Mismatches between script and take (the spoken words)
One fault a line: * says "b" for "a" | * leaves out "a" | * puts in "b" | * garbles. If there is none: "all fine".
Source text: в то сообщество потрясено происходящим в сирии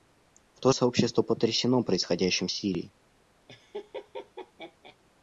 all fine